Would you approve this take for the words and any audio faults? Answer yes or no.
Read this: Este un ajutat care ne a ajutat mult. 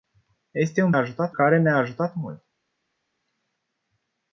yes